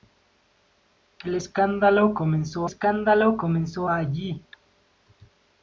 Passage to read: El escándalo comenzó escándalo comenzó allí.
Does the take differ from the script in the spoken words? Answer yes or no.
no